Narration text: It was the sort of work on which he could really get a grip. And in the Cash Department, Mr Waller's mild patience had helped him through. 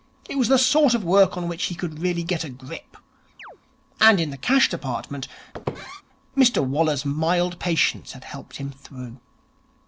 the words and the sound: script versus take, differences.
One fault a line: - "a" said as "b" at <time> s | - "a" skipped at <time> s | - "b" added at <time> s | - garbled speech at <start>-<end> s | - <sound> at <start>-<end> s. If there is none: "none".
- chirp at 3.4-3.6 s
- squeak at 5.5-6.0 s